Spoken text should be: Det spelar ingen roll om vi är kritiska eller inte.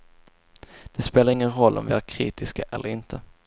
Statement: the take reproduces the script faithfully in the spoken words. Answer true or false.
true